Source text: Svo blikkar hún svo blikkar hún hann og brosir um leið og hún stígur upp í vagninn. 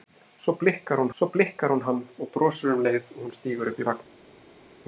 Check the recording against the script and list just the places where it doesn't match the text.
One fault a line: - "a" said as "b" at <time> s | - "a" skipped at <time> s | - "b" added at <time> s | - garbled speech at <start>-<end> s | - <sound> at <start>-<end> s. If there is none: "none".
none